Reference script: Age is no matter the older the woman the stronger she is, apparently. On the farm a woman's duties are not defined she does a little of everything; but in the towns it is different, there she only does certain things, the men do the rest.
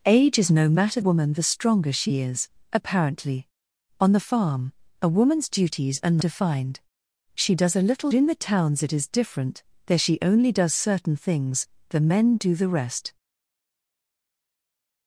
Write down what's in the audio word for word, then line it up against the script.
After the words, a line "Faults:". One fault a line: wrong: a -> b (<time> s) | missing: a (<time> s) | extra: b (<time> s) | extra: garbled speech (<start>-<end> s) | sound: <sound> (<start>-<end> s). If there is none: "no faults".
Age is no matter woman the stronger she is, apparently. On the farm a woman's duties are defined she does a little in the towns it is different, there she only does certain things, the men do the rest.
Faults:
missing: the older the (1.0 s)
missing: not (6.2 s)
missing: of everything but (8.1 s)